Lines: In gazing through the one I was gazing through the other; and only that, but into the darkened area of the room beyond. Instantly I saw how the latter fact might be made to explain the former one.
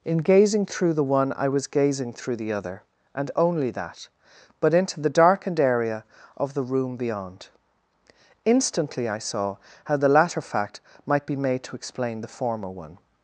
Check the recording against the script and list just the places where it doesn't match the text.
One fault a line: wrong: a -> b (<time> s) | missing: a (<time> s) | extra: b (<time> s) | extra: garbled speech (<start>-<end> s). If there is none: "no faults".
no faults